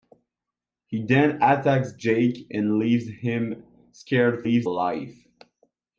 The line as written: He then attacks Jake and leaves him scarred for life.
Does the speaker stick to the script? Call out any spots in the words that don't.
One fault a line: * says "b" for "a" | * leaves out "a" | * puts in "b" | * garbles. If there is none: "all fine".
* says "leaves" for "for"